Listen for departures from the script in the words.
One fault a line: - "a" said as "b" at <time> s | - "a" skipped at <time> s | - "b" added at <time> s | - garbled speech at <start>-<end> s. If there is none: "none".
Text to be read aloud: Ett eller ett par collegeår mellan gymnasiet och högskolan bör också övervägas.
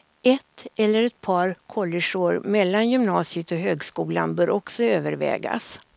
none